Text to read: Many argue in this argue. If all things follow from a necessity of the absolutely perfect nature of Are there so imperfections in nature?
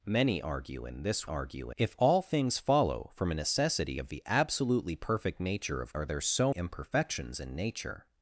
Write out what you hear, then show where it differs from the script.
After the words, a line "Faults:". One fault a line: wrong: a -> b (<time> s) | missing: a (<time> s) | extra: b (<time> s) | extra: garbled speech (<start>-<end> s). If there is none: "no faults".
Many argue in this argue. If all things follow from a necessity of the absolutely perfect nature of Are there so imperfections in nature?
Faults:
no faults